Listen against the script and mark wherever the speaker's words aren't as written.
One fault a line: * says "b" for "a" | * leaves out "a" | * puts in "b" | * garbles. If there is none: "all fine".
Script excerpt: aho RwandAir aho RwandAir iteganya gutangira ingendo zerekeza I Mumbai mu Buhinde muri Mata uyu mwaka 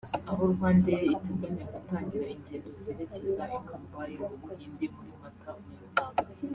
* leaves out "aho RwandAir"